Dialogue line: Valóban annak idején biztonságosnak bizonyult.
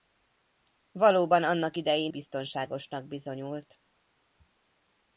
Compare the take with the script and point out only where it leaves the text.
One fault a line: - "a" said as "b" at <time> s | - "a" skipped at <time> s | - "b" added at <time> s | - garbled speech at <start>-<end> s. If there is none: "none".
none